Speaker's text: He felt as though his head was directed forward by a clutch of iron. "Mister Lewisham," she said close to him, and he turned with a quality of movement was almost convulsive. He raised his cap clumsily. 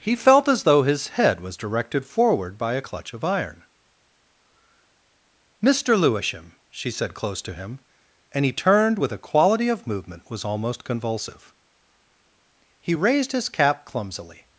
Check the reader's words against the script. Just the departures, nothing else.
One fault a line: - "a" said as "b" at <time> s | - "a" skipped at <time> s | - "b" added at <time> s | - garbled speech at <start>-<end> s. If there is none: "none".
none